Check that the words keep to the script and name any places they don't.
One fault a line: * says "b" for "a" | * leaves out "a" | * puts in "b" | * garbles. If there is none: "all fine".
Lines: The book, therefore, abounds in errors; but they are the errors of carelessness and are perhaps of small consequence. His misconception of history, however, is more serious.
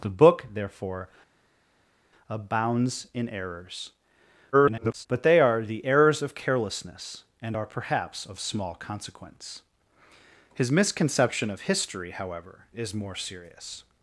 * garbles